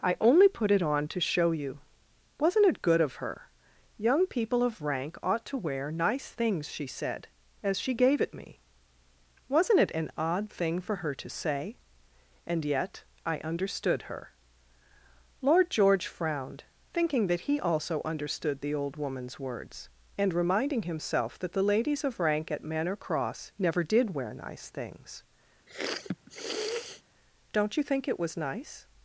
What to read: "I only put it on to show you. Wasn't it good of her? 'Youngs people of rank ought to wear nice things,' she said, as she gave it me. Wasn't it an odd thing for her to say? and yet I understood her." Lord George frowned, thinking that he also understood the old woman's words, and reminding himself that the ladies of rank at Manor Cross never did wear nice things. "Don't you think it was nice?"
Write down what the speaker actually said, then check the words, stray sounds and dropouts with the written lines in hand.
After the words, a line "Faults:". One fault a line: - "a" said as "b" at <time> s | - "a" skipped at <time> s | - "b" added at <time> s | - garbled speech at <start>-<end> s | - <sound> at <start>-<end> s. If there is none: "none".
"I only put it on to show you. Wasn't it good of her? 'Young people of rank ought to wear nice things,' she said, as she gave it me. Wasn't it an odd thing for her to say? and yet I understood her." Lord George frowned, thinking that he also understood the old woman's words, and reminding himself that the ladies of rank at Manor Cross never did wear nice things. "Don't you think it was nice?"
Faults:
- "Youngs" said as "Young" at 4.0 s
- sniff at 25.7-27.0 s